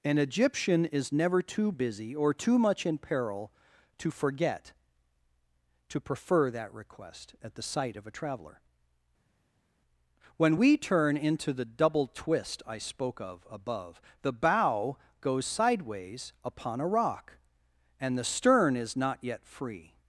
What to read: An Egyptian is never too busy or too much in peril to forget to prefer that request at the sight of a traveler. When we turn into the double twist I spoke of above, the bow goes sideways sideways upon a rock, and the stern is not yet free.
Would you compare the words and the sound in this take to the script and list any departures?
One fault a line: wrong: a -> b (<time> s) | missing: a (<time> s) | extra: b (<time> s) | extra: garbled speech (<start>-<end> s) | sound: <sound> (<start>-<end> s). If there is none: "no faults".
missing: sideways (16.3 s)